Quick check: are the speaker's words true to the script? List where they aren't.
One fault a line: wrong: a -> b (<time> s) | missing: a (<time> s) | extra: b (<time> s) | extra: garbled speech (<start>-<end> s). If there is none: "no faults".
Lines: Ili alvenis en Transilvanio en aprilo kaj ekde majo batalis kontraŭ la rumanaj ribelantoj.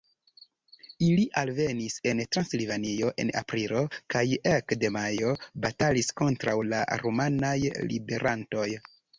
no faults